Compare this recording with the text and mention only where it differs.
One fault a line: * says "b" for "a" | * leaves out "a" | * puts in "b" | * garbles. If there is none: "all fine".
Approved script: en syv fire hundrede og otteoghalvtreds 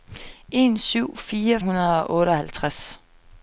all fine